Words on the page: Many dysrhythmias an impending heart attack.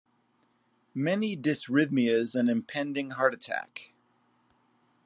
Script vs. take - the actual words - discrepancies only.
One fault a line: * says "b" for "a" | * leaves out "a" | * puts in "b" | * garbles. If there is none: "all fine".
all fine